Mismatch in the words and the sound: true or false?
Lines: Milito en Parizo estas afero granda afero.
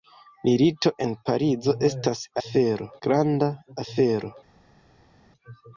false